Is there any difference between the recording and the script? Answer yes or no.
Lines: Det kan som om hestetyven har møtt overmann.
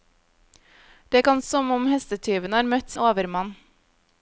no